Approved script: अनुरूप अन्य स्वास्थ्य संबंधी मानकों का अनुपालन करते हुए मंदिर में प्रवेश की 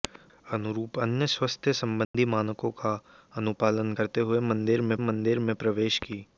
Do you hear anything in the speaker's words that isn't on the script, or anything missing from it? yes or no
yes